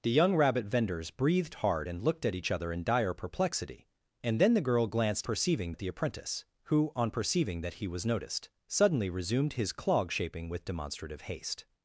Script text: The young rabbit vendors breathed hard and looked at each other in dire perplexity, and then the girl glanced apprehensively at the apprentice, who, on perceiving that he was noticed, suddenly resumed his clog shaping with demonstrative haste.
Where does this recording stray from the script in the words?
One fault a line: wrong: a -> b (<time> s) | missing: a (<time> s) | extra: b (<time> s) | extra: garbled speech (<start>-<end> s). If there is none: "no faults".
wrong: apprehensively -> perceiving (5.2 s)